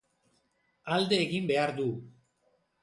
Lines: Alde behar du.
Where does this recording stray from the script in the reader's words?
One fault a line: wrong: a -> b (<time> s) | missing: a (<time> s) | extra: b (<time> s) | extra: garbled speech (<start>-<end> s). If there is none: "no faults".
extra: egin (1.3 s)